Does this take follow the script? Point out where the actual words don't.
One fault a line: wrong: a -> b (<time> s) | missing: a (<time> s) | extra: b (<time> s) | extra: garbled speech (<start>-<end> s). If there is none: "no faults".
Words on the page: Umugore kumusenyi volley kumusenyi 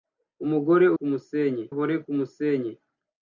no faults